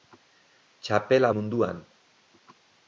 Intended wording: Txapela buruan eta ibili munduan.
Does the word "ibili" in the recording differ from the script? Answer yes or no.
yes